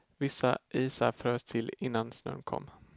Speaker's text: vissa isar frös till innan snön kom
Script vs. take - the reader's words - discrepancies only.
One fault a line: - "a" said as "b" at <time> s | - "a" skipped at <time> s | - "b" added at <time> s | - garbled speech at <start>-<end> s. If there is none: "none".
none